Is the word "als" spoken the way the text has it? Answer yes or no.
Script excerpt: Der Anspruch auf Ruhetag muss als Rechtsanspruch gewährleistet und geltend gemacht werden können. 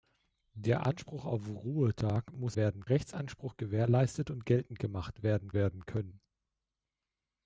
no